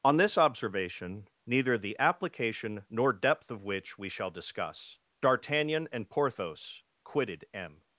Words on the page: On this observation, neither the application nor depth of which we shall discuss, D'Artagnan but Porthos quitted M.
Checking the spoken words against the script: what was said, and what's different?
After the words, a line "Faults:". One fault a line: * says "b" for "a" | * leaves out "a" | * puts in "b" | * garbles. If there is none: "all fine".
On this observation, neither the application nor depth of which we shall discuss, D'Artagnan and Porthos quitted M.
Faults:
* says "and" for "but"